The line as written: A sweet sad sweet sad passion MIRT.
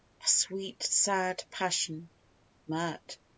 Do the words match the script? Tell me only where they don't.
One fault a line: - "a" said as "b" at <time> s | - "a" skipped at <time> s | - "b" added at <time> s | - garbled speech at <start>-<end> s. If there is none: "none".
- "sweet sad" skipped at 1.4 s